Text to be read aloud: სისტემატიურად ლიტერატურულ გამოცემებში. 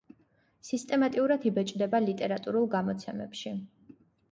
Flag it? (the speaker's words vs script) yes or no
yes